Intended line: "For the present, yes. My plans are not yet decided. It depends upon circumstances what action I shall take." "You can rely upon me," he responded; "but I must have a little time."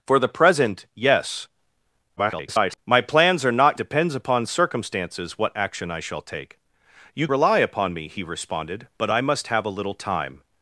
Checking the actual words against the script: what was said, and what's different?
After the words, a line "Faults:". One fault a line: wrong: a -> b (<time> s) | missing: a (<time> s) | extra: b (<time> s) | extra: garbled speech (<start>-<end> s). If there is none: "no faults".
"For the present, yes. [garbled] My plans are not depends upon circumstances what action I shall take." "You rely upon me," he responded; "but I must have a little time."
Faults:
extra: garbled speech (2.2-2.8 s)
missing: yet decided It (3.8 s)
missing: can (7.3 s)